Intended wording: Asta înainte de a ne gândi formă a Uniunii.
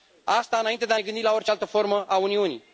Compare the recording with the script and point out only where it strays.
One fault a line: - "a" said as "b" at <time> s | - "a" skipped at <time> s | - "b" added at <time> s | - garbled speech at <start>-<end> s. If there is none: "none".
- "la orice altă" added at 1.2 s